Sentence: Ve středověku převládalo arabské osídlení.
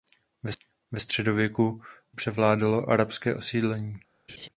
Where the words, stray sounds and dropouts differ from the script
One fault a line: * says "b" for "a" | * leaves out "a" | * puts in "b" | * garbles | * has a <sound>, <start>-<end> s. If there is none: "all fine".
* has a laugh, 4.3-4.5 s